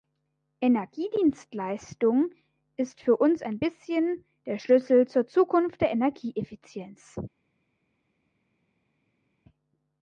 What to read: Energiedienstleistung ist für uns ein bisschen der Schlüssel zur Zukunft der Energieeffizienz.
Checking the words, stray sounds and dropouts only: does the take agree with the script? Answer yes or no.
yes